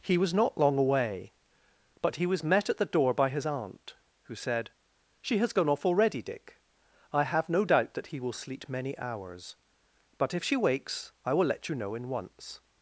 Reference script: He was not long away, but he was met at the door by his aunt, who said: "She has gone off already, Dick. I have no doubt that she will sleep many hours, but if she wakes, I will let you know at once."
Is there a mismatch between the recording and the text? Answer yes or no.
yes